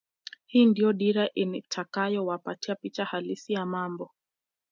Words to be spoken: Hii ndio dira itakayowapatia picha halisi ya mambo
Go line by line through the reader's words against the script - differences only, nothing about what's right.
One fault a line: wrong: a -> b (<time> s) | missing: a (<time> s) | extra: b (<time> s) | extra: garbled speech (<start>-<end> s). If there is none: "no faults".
no faults